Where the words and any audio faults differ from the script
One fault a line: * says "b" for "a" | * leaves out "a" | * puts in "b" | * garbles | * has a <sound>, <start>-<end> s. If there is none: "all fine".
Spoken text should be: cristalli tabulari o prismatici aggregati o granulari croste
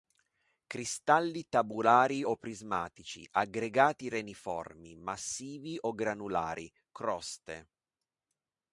* puts in "reniformi massivi"